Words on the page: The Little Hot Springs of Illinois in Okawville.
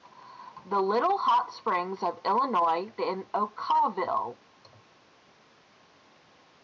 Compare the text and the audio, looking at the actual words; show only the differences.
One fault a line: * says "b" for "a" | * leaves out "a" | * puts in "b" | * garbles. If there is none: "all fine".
all fine